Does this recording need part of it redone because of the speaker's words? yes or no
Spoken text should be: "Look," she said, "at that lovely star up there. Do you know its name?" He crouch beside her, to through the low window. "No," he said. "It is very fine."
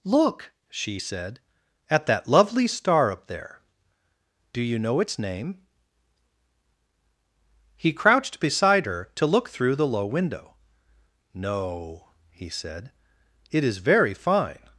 yes